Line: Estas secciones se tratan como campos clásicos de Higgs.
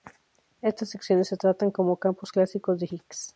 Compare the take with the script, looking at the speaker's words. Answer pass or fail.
pass